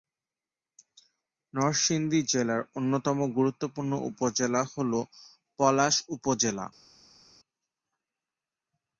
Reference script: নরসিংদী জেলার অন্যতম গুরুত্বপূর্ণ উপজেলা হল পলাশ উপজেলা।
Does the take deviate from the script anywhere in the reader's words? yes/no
no